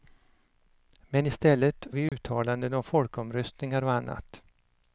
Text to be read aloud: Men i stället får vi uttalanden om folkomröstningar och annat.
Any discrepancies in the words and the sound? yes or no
yes